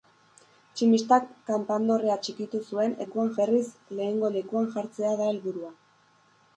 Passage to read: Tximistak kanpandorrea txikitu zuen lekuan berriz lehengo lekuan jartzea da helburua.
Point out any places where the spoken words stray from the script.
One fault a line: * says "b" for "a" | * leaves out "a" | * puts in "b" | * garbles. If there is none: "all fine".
all fine